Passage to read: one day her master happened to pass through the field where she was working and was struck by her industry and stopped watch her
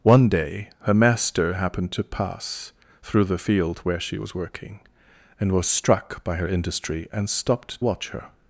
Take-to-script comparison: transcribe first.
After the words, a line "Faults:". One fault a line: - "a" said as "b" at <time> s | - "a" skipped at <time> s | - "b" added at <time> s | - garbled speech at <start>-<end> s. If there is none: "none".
one day her master happened to pass through the field where she was working and was struck by her industry and stopped watch her
Faults:
none